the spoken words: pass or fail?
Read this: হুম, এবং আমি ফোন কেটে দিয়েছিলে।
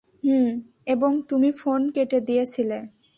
fail